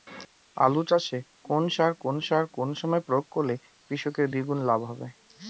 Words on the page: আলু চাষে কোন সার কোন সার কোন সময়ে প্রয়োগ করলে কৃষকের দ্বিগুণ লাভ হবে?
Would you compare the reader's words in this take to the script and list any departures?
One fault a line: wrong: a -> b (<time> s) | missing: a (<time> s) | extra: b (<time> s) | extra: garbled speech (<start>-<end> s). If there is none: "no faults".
no faults